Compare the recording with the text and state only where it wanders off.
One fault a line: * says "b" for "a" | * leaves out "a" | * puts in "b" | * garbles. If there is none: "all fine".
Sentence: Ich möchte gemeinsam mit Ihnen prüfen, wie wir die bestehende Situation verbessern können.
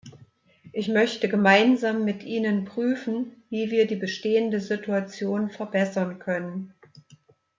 all fine